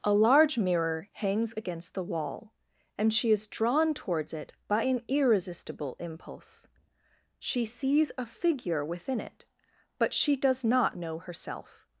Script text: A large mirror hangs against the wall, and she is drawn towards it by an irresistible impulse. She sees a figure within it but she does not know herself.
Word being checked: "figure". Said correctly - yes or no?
yes